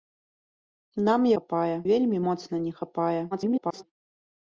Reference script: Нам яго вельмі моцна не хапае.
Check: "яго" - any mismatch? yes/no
yes